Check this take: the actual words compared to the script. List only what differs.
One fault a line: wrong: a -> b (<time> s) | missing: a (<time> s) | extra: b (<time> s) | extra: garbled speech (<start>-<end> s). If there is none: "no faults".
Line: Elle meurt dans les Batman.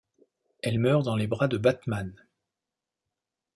extra: bras de (1.3 s)